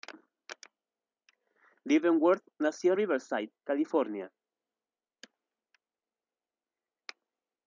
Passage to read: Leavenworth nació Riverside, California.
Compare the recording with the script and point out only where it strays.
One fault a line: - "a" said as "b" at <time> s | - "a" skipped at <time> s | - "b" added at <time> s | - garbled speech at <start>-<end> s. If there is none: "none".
none